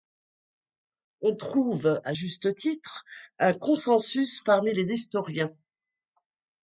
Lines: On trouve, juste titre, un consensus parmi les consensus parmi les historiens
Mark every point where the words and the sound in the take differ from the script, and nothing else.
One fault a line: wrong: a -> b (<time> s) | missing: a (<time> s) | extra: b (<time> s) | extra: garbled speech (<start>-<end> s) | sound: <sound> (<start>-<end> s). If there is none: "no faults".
extra: à (2.0 s)
missing: consensus parmi les (4.9 s)